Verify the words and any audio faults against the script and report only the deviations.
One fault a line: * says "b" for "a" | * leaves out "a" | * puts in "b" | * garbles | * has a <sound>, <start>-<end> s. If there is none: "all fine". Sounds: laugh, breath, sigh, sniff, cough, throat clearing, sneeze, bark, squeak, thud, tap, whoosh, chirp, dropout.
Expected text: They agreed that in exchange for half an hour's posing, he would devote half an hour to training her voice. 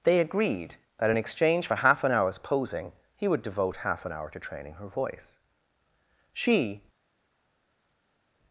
* puts in "She"